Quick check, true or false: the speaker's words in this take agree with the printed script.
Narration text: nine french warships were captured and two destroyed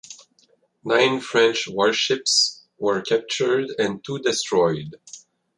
true